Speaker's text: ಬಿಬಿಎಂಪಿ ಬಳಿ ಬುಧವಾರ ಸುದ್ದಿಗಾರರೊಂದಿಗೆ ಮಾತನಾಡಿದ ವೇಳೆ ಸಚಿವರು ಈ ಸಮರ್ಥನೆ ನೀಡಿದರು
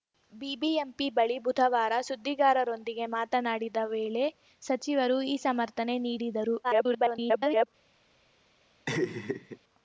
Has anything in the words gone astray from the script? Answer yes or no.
yes